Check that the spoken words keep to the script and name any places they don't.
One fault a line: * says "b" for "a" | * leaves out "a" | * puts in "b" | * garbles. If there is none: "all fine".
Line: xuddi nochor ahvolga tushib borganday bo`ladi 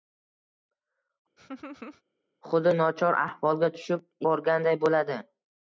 all fine